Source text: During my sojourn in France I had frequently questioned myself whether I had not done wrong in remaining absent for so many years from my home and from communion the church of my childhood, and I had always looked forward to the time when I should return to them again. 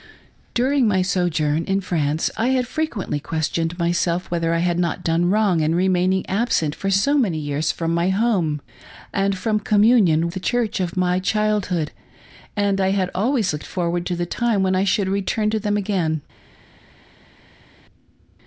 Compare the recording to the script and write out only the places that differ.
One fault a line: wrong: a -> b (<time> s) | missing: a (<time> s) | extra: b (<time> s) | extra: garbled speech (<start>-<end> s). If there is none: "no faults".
no faults